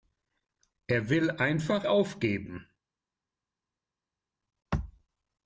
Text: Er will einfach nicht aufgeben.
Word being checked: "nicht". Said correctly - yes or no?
no